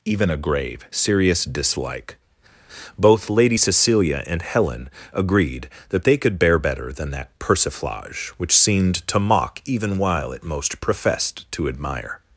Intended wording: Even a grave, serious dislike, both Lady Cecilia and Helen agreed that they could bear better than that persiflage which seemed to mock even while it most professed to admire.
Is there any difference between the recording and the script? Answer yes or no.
no